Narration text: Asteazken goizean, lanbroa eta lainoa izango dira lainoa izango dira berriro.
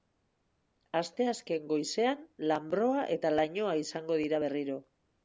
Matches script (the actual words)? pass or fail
fail